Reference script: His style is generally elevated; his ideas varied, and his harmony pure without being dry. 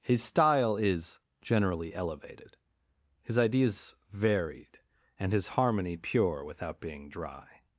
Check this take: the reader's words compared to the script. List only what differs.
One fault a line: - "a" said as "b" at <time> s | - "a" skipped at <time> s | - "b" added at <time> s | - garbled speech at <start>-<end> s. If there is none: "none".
none